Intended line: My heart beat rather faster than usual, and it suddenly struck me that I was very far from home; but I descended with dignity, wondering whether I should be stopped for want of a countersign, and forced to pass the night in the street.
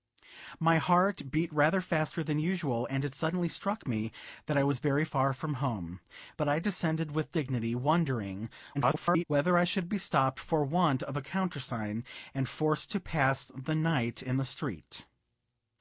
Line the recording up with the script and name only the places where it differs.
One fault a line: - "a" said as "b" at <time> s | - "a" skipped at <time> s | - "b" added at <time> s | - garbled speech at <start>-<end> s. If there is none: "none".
- garbled speech at 8.7-9.2 s